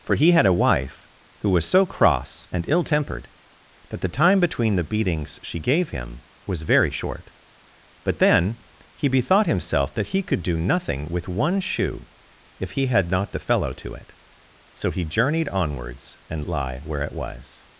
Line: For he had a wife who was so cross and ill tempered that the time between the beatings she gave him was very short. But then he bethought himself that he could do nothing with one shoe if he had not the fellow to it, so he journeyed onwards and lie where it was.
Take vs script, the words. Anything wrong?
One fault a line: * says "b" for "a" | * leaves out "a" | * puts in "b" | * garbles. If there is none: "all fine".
all fine